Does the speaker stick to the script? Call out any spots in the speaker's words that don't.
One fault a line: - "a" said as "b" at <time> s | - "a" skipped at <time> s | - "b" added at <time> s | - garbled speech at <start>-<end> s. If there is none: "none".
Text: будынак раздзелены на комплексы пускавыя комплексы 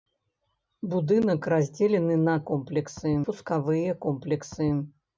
none